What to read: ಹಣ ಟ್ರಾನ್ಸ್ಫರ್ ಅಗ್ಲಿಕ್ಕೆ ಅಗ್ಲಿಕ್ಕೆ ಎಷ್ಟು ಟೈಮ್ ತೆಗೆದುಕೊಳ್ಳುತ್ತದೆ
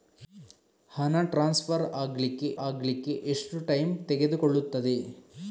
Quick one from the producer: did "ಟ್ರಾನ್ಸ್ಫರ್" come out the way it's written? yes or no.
yes